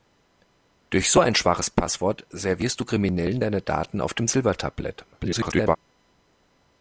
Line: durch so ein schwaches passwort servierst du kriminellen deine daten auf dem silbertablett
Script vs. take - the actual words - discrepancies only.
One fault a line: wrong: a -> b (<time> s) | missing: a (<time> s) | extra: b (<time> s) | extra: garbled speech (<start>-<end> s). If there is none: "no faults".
extra: garbled speech (5.1-5.8 s)